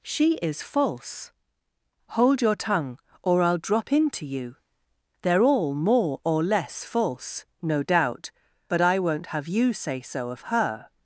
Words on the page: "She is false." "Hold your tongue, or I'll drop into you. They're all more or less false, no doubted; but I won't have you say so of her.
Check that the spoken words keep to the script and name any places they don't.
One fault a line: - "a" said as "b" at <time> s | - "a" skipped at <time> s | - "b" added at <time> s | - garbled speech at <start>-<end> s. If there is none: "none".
- "doubted" said as "doubt" at 7.8 s